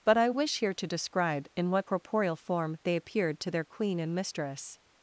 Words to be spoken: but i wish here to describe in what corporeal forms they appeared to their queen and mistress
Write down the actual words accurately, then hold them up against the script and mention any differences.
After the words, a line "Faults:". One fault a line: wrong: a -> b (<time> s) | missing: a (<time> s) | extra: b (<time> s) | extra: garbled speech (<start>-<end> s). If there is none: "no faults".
but i wish here to describe in what corporeal form they appeared to their queen and mistress
Faults:
wrong: forms -> form (2.4 s)